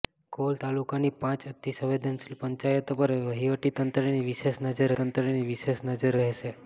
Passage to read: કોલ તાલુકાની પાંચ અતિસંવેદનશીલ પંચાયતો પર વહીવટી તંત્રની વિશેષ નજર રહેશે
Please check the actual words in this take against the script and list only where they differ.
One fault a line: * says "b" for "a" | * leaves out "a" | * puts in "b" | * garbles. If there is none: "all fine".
* puts in "તંત્રની વિશેષ નજર"